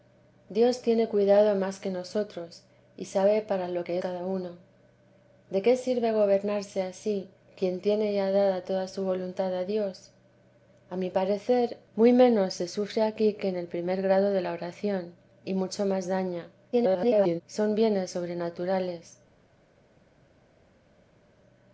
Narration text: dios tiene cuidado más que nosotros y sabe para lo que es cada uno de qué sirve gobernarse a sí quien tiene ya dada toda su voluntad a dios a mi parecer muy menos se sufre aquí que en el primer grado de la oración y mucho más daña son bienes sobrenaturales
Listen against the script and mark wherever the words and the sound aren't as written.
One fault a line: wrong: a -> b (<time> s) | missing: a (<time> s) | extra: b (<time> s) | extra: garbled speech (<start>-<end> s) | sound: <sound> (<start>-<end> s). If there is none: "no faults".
missing: es (4.0 s)
extra: garbled speech (16.7-17.4 s)